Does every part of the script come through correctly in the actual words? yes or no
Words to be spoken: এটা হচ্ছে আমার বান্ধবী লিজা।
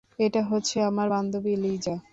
yes